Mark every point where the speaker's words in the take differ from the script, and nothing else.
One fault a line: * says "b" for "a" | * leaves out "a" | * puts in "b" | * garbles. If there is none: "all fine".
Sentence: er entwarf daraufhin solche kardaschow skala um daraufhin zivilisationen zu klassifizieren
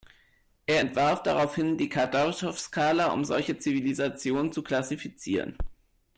* says "die" for "solche"
* says "solche" for "daraufhin"